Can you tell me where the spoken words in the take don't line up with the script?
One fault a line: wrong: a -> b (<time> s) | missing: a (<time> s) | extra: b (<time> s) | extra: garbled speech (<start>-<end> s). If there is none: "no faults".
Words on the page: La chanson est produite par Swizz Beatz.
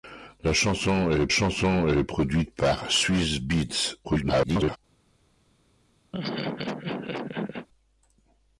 extra: chanson est (1.3 s)
extra: garbled speech (4.0-4.8 s)